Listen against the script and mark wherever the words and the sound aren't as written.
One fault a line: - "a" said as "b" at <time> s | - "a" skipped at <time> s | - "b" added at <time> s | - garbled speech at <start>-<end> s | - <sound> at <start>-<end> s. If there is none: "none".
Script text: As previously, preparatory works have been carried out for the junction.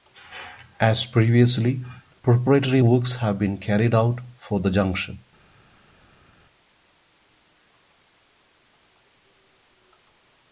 none